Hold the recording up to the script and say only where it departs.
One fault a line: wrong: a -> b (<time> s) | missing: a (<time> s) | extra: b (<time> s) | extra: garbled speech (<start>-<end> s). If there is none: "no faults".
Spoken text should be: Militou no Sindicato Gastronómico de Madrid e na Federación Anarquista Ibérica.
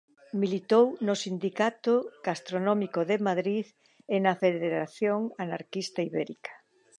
no faults